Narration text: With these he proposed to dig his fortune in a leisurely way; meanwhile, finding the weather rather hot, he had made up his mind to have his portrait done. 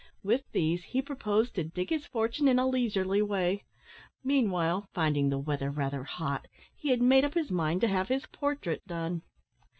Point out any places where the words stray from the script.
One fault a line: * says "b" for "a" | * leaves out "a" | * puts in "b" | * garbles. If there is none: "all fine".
all fine